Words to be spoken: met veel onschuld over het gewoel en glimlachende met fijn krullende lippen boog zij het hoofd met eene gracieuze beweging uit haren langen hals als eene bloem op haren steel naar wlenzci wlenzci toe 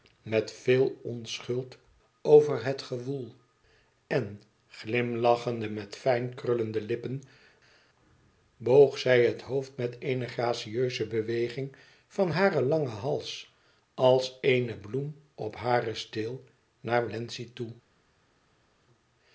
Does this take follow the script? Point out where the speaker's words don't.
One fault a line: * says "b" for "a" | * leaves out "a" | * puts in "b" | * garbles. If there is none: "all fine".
* says "van" for "uit"
* leaves out "wlenzci"